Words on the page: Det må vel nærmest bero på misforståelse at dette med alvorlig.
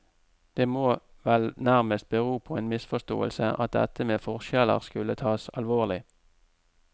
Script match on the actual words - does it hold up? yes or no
no